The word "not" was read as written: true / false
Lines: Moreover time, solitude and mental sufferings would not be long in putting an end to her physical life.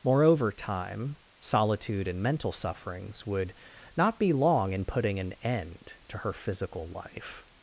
true